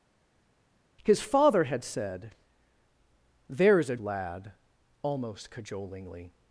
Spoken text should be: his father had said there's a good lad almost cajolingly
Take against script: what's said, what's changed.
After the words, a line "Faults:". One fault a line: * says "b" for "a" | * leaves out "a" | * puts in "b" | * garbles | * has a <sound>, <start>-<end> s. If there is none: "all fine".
his father had said there's a lad almost cajolingly
Faults:
* leaves out "good"